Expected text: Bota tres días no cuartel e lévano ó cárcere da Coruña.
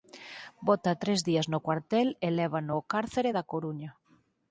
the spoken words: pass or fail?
pass